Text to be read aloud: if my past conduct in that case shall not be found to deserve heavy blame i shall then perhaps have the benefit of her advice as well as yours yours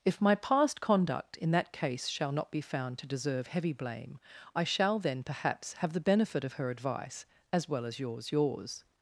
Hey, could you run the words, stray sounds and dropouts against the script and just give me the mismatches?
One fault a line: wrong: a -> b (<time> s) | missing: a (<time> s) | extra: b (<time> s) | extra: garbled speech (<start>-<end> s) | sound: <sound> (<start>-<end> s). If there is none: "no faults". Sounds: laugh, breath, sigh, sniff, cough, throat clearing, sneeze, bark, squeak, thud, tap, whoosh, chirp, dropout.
no faults